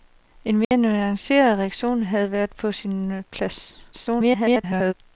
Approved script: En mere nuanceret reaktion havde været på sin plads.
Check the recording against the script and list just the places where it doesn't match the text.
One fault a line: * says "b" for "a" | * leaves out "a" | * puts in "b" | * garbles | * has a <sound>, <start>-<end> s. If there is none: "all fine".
* has a dropout, 0.6-0.7 s
* garbles